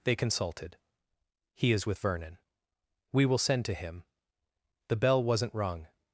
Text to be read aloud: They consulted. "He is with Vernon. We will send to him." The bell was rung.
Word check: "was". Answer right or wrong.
wrong